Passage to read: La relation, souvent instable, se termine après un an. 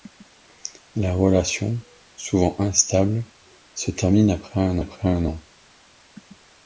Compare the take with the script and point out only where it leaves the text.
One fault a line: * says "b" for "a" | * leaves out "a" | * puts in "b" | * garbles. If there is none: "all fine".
* puts in "après un"